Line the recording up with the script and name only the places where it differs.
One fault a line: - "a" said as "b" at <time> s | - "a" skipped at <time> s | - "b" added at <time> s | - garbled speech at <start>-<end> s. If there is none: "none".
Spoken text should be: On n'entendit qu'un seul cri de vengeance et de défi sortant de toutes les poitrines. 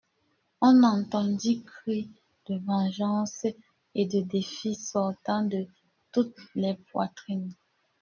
- "qu'un seul" skipped at 1.6 s